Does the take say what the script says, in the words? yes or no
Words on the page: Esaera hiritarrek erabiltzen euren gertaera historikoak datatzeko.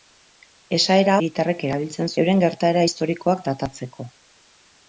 yes